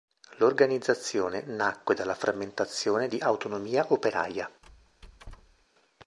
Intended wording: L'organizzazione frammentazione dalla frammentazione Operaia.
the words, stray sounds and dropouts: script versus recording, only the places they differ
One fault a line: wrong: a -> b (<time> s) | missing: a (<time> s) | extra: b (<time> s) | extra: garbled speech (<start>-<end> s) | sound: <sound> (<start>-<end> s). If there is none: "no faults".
wrong: frammentazione -> nacque (1.4 s)
extra: di Autonomia (3.0 s)
sound: squeak (4.6-5.7 s)